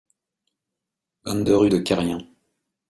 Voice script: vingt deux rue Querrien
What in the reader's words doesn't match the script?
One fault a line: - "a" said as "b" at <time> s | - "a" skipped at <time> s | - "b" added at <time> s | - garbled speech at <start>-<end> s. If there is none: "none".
- "de" added at 1.7 s